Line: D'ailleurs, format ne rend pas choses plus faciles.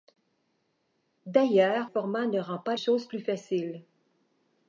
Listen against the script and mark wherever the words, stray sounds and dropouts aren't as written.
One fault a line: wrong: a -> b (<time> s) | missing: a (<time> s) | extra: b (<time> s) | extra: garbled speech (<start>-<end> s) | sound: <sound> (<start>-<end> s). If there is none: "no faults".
no faults